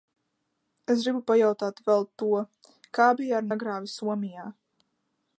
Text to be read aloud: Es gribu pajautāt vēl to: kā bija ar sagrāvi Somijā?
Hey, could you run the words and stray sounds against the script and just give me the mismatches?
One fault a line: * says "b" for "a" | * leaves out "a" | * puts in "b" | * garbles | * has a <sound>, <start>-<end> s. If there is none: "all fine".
all fine